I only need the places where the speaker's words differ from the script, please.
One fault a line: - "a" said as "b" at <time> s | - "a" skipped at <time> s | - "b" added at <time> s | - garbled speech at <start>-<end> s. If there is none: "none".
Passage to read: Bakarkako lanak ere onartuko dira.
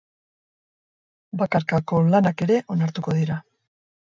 none